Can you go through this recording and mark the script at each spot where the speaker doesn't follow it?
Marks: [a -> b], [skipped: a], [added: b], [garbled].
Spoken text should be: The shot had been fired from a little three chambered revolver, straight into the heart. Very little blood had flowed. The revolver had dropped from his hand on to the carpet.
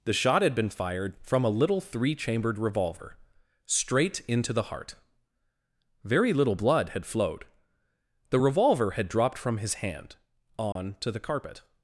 The shot had been fired from a little three chambered revolver, straight into the heart. Very little blood had flowed. The revolver had dropped from his hand on to the carpet.